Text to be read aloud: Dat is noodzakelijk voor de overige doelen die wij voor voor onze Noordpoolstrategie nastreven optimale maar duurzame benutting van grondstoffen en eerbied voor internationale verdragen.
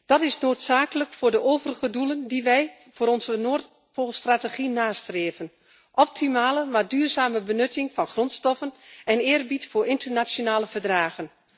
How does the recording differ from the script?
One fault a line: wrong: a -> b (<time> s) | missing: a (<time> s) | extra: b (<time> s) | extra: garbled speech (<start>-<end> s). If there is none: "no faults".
missing: voor (3.1 s)